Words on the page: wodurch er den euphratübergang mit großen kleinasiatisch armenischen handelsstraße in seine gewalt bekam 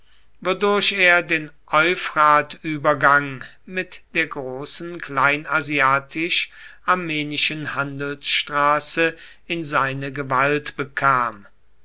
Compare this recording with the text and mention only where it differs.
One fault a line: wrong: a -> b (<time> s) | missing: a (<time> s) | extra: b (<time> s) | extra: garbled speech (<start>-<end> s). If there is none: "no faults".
extra: der (4.1 s)